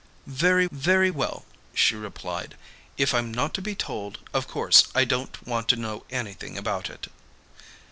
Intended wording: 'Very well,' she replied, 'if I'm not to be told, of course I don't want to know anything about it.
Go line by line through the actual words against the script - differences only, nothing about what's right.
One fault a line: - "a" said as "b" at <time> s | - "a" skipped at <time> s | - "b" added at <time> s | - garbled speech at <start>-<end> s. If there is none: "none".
- "very" added at 0.7 s